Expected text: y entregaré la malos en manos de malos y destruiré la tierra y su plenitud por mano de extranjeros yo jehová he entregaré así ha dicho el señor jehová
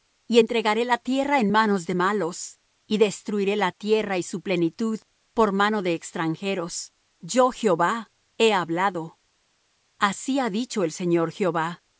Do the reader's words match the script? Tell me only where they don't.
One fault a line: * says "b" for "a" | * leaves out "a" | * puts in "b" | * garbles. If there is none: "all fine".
* says "tierra" for "malos"
* says "hablado" for "entregaré"